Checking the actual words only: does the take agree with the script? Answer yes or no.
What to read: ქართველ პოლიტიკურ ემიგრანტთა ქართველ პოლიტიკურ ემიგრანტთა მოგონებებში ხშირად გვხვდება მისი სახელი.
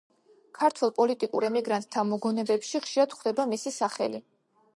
no